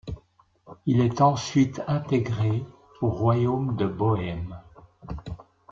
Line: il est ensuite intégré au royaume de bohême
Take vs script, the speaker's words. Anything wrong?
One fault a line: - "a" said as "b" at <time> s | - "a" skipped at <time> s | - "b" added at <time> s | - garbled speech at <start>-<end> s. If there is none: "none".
none